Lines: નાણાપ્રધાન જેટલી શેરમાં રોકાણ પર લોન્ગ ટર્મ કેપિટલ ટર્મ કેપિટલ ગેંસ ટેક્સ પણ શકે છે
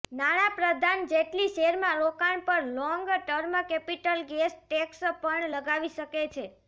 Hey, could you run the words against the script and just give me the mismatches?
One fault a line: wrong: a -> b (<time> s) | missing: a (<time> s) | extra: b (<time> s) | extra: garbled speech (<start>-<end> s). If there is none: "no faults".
missing: ટર્મ કેપિટલ (4.2 s)
extra: લગાવી (5.5 s)